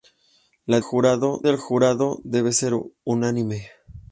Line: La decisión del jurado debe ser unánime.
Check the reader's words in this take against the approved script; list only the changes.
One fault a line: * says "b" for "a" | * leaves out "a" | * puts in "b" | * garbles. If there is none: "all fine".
* says "jurado" for "decisión"